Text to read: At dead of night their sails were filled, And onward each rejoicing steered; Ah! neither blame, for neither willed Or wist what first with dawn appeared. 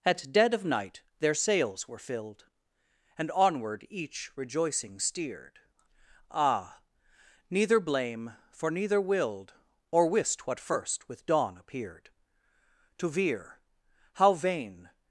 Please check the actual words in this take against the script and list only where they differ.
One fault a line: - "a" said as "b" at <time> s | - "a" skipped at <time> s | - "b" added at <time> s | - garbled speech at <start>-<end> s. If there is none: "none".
- "To veer how vain" added at 13.0 s